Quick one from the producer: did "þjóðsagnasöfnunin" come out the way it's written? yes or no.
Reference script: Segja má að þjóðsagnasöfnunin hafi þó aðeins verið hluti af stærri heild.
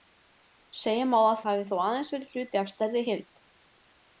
no